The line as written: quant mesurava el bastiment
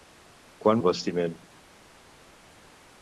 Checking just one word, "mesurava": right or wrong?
wrong